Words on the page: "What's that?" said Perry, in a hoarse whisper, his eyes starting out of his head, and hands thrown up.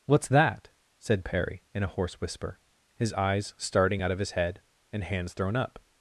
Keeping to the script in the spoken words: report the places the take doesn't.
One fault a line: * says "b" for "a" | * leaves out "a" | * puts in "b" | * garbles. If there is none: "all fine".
all fine